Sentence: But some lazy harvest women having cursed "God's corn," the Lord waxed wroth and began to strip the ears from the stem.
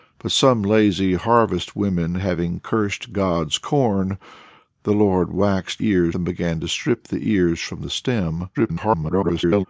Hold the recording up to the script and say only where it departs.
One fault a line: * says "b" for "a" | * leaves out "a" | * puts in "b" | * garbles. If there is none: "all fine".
* says "ears" for "wroth"
* garbles